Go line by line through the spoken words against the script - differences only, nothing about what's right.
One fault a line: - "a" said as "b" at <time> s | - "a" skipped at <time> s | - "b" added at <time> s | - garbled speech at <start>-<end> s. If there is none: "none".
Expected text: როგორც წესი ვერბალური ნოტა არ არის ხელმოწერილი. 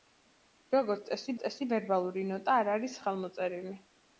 - "წესი" added at 1.4 s